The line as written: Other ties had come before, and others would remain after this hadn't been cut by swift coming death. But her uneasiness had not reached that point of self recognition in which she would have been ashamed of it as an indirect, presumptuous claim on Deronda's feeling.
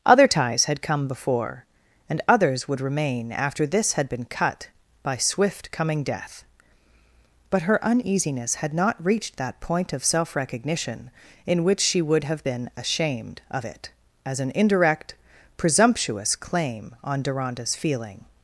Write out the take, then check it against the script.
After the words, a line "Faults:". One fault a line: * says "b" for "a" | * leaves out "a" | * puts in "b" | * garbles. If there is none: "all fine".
Other ties had come before, and others would remain after this had been cut by swift coming death. But her uneasiness had not reached that point of self recognition in which she would have been ashamed of it as an indirect, presumptuous claim on Deronda's feeling.
Faults:
* says "had" for "hadn't"